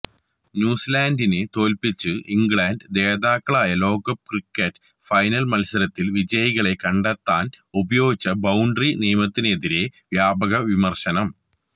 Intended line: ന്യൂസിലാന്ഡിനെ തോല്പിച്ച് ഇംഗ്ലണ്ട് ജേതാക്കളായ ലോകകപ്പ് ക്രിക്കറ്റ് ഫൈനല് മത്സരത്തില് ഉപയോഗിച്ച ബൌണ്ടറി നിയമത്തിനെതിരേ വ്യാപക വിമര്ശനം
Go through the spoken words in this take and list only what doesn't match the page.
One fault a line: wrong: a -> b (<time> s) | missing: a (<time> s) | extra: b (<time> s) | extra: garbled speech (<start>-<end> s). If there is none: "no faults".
extra: വിജയികളെ കണ്ടെത്താന് (6.2 s)